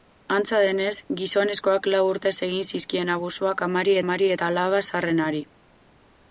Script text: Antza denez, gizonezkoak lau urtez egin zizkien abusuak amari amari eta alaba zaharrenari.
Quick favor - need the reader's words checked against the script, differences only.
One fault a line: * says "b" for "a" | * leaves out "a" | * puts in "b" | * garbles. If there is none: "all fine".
all fine